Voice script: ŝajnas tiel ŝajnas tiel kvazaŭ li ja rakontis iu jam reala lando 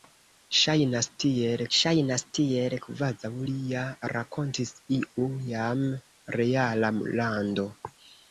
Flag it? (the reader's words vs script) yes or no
no